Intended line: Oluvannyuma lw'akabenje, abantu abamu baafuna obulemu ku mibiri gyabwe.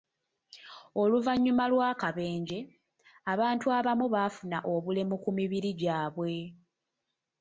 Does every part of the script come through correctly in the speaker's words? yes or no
yes